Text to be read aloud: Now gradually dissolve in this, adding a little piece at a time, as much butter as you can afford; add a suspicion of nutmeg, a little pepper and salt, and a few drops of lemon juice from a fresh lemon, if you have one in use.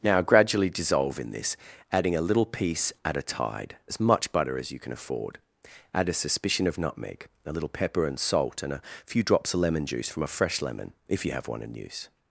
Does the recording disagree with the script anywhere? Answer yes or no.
yes